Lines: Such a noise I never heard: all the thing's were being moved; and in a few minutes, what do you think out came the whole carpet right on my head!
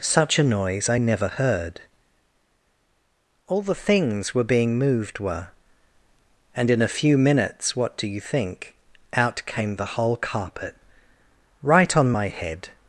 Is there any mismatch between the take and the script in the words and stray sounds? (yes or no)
yes